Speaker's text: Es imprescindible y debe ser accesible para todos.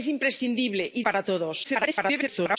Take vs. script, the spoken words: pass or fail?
fail